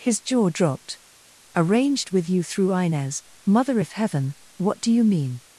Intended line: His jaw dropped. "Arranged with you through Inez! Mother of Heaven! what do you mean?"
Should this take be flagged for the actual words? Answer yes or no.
yes